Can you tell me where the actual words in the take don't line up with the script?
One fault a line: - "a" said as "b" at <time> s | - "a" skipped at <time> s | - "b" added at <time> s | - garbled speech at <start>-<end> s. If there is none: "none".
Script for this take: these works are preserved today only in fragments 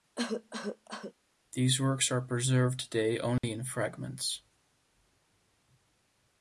none